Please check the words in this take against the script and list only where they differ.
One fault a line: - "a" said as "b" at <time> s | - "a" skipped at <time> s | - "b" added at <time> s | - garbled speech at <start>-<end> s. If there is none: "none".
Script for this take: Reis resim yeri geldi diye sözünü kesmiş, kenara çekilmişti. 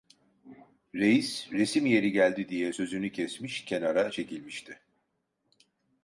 none